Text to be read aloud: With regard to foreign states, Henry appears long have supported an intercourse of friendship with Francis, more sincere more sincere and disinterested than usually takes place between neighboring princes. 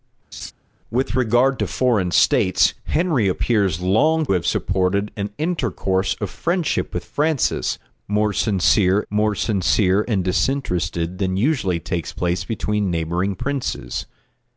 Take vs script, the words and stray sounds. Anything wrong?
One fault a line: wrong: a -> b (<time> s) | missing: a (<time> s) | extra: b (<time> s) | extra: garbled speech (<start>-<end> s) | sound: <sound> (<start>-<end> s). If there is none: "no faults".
sound: laugh (0.3-0.5 s)